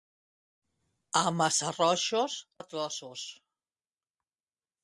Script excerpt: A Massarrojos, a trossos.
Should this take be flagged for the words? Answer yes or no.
no